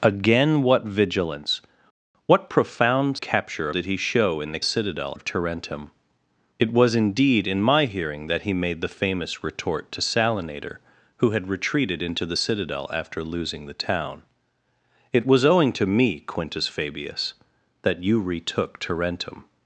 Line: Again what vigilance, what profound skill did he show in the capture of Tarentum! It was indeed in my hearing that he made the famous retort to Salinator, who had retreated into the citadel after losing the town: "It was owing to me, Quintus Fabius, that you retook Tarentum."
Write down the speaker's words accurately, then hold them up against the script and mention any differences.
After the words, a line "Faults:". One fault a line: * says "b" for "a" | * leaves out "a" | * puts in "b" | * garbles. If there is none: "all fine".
Again what vigilance, what profound capture did he show in the citadel of Tarentum! It was indeed in my hearing that he made the famous retort to Salinator, who had retreated into the citadel after losing the town: "It was owing to me, Quintus Fabius, that you retook Tarentum."
Faults:
* says "capture" for "skill"
* says "citadel" for "capture"